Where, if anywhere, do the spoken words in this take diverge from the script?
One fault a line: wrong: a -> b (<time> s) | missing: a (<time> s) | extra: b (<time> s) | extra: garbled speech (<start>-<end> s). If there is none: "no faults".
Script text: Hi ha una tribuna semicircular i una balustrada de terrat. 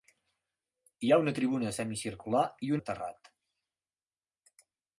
missing: una balustrada (2.7 s)